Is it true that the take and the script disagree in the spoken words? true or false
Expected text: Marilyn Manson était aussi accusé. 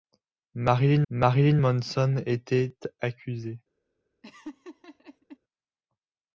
true